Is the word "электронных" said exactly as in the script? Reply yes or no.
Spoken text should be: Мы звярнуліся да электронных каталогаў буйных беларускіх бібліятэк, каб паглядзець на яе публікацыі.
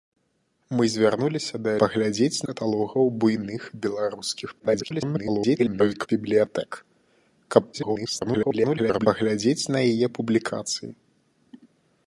no